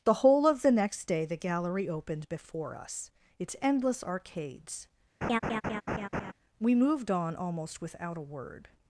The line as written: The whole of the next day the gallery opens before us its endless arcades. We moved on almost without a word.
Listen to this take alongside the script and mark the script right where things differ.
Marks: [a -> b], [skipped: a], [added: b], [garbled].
The whole of the next day the gallery [opens -> opened] before us its endless arcades. We moved on almost without a word.